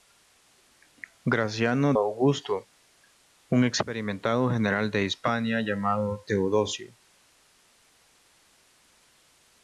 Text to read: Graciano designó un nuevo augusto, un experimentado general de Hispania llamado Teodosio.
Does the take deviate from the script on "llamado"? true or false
false